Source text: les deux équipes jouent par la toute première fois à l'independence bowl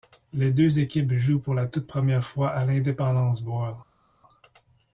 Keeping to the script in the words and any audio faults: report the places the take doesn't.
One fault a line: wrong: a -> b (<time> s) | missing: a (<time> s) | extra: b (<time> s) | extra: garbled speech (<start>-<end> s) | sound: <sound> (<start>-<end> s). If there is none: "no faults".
wrong: par -> pour (1.4 s)